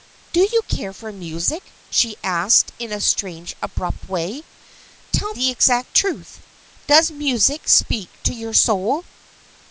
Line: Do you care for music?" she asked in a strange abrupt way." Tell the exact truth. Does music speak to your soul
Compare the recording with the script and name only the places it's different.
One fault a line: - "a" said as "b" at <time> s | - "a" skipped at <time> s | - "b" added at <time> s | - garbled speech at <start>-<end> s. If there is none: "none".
none